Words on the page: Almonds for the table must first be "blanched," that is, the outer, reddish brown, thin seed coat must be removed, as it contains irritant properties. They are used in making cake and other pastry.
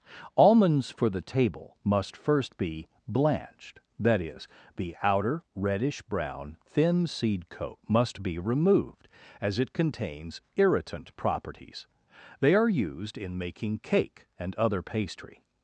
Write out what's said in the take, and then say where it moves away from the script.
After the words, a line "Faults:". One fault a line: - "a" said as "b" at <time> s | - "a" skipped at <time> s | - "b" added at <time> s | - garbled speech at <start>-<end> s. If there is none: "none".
Almonds for the table must first be "blanched," that is, the outer, reddish brown, thin seed coat must be removed, as it contains irritant properties. They are used in making cake and other pastry.
Faults:
none